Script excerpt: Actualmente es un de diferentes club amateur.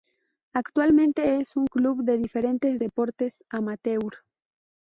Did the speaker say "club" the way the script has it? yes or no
no